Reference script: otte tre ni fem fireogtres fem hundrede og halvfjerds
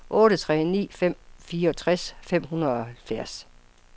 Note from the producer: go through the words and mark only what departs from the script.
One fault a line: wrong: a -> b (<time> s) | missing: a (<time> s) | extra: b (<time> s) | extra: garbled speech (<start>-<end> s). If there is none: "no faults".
no faults